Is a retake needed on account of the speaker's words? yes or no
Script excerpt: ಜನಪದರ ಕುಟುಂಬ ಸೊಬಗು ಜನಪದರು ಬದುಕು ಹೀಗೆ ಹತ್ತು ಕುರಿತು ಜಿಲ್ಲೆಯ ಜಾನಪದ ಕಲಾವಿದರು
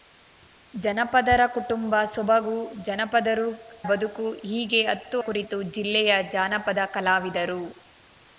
no